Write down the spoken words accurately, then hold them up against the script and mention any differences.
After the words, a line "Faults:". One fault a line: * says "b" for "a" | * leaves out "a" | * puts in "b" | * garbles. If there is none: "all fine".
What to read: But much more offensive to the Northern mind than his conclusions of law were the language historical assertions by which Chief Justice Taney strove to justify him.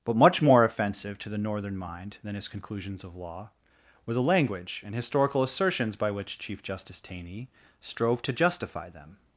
But much more offensive to the Northern mind than his conclusions of law were the language and historical assertions by which Chief Justice Taney strove to justify them.
Faults:
* puts in "and"
* says "them" for "him"